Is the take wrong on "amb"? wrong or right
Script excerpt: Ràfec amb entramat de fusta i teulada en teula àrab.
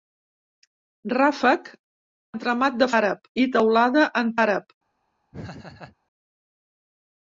wrong